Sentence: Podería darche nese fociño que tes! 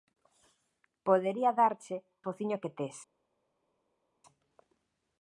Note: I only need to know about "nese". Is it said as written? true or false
false